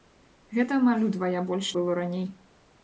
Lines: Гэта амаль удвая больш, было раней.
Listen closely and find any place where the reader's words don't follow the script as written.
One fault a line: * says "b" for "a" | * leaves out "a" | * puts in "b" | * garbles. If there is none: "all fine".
all fine